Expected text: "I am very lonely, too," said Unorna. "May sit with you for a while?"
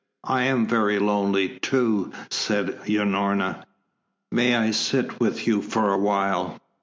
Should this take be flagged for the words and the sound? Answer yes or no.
yes